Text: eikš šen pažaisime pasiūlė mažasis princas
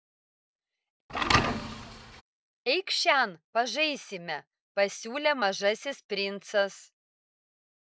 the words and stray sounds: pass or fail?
fail